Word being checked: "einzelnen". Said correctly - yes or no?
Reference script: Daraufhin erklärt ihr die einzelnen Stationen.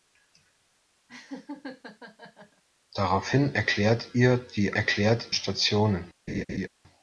no